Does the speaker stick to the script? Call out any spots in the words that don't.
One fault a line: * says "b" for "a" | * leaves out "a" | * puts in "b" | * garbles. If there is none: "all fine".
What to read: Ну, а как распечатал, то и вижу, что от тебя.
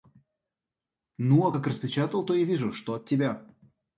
all fine